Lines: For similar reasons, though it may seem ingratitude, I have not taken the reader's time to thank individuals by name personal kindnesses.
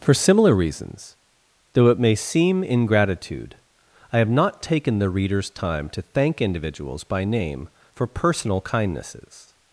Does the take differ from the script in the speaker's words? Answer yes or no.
yes